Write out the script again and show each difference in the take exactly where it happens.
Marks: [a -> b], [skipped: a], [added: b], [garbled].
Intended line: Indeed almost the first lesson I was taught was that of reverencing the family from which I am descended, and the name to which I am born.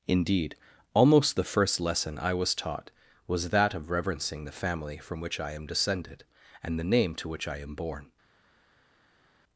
Indeed almost the first lesson I was taught was that of reverencing the family from which I am descended, and the name to which I am born.